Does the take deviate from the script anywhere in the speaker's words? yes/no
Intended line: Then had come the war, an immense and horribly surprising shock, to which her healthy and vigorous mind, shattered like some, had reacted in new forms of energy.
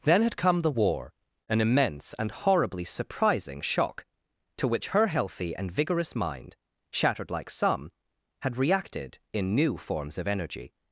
no